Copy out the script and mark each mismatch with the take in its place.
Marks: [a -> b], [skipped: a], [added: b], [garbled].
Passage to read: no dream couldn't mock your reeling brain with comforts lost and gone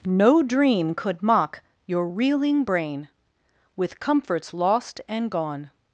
no dream [couldn't -> could] mock your reeling brain with comforts lost and gone